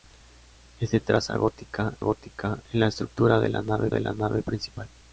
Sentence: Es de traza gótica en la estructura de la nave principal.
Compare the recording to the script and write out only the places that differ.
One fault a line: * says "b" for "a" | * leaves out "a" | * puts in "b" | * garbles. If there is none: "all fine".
* puts in "gótica"
* puts in "de la nave"